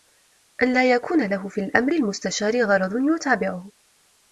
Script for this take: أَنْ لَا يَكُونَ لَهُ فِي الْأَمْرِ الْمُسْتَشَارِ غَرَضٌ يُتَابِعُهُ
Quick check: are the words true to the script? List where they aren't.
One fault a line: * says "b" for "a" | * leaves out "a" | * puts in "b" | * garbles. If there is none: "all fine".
all fine